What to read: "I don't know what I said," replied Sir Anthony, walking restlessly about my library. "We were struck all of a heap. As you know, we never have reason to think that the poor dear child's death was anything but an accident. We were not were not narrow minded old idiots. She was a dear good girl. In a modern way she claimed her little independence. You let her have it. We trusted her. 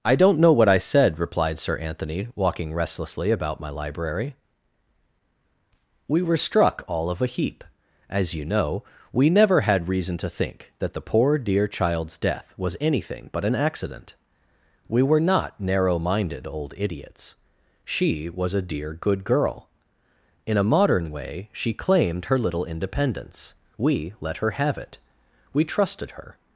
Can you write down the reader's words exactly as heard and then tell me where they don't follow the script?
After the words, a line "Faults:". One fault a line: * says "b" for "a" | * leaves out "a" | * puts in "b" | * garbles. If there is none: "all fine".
"I don't know what I said," replied Sir Anthony, walking restlessly about my library. "We were struck all of a heap. As you know, we never had reason to think that the poor dear child's death was anything but an accident. We were not narrow minded old idiots. She was a dear good girl. In a modern way she claimed her little independence. We let her have it. We trusted her.
Faults:
* says "had" for "have"
* leaves out "were not"
* says "We" for "You"